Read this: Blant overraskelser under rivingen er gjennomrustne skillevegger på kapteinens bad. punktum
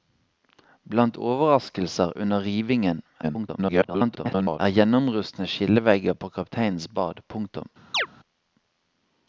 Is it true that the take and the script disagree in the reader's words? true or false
true